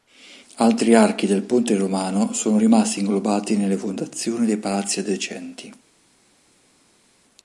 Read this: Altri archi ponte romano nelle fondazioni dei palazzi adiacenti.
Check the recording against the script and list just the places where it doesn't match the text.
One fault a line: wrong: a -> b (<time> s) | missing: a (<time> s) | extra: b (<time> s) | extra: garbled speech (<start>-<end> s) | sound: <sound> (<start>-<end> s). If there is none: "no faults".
extra: del (1.3 s)
extra: sono rimasti inglobati (2.3 s)